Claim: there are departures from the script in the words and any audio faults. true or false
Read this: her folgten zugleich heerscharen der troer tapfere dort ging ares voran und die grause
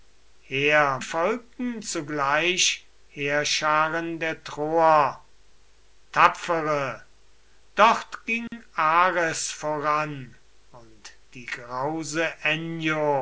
true